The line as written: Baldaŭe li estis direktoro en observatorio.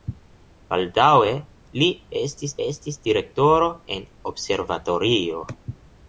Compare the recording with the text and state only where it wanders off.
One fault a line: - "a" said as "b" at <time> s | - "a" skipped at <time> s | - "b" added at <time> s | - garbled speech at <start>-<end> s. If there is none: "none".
- "estis" added at 2.7 s